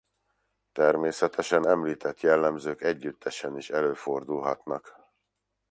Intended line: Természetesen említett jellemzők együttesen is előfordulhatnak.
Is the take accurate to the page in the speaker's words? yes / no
yes